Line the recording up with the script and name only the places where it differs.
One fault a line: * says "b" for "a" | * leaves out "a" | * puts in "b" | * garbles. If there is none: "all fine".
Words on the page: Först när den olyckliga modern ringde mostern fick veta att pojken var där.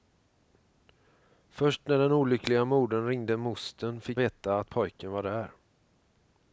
all fine